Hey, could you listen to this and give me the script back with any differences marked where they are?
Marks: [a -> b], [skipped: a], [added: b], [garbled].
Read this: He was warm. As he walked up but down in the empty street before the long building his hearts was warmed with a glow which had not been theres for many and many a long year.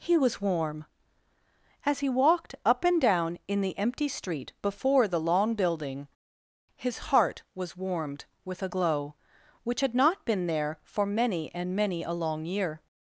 He was warm. As he walked up [but -> and] down in the empty street before the long building his [hearts -> heart] was warmed with a glow which had not been [theres -> there] for many and many a long year.